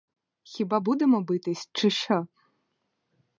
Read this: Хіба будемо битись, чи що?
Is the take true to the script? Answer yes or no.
yes